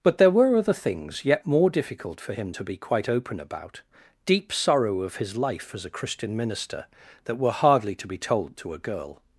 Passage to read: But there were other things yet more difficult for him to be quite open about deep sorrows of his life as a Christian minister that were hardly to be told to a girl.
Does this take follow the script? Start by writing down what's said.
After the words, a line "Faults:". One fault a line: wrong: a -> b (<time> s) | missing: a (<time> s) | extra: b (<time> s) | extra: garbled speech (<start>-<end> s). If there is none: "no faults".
But there were other things yet more difficult for him to be quite open about deep sorrow of his life as a Christian minister that were hardly to be told to a girl.
Faults:
wrong: sorrows -> sorrow (4.5 s)